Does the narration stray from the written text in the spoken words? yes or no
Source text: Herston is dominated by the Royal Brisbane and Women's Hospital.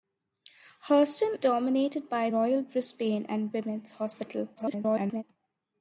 yes